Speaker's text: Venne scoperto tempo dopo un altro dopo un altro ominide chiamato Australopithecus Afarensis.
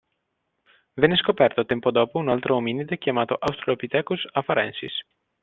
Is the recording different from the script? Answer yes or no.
yes